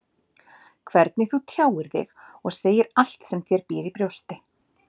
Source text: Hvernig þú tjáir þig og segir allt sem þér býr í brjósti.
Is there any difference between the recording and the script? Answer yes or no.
no